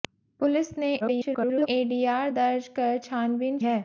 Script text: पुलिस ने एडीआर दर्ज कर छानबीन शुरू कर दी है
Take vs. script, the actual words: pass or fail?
fail